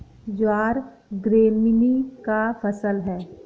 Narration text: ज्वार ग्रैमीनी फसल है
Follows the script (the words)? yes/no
no